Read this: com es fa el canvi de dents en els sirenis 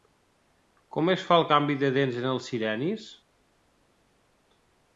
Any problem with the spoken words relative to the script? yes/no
no